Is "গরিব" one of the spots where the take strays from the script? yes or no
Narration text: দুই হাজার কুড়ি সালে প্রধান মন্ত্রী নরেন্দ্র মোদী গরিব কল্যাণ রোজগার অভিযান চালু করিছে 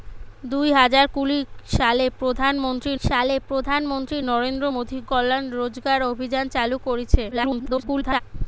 yes